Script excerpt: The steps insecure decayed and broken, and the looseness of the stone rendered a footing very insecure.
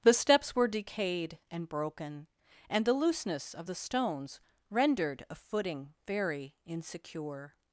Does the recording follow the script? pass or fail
fail